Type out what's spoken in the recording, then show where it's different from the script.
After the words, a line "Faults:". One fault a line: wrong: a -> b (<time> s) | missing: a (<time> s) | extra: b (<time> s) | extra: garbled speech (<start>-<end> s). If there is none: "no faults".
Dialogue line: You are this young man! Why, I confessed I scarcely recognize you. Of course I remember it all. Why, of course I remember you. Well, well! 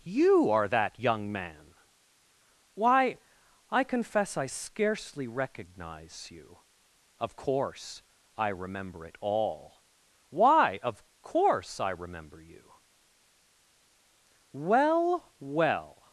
You are that young man! Why, I confess I scarcely recognize you. Of course I remember it all. Why, of course I remember you. Well, well!
Faults:
wrong: this -> that (0.7 s)
wrong: confessed -> confess (3.8 s)